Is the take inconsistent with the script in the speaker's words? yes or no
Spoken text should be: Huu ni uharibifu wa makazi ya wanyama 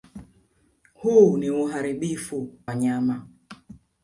yes